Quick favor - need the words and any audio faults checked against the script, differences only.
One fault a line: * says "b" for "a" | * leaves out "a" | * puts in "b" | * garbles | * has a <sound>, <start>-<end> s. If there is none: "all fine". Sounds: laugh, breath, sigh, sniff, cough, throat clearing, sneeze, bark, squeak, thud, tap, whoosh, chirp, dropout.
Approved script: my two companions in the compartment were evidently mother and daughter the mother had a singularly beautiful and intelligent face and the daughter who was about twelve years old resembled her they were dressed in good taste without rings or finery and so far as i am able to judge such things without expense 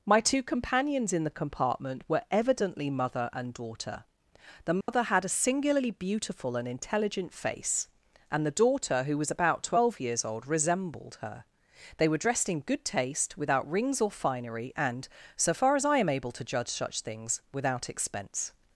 * has a dropout, 4.8-4.9 s